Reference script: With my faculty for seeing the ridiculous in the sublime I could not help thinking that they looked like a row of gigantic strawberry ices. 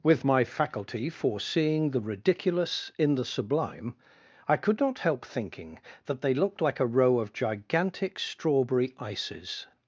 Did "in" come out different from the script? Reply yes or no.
no